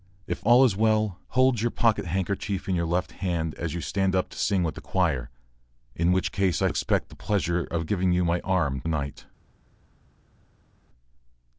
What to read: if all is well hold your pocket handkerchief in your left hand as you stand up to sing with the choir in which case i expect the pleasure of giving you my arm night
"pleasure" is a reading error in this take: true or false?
false